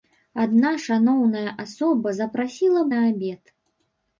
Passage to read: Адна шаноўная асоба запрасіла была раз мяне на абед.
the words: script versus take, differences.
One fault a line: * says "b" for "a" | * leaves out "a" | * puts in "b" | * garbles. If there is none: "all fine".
* leaves out "была раз мяне"